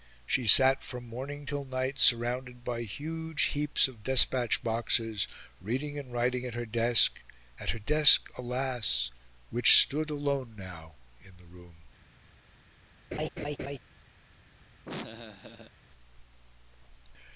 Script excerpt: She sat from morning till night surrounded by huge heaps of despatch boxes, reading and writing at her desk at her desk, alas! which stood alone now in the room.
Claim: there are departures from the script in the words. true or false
false